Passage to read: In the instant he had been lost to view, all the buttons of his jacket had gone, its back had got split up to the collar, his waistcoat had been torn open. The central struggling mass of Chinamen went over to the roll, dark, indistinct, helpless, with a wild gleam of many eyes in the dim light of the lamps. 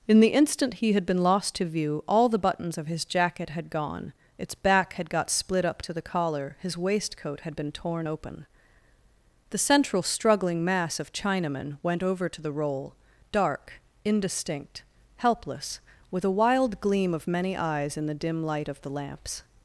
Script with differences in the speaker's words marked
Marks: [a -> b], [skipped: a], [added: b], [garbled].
In the instant he had been lost to view, all the buttons of his jacket had gone, its back had got split up to the collar, his waistcoat had been torn open. The central struggling mass of Chinamen went over to the roll, dark, indistinct, helpless, with a wild gleam of many eyes in the dim light of the lamps.